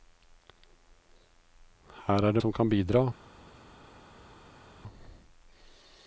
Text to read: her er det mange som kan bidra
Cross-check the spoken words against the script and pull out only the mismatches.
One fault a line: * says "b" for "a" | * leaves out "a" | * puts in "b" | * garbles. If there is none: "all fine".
* leaves out "mange"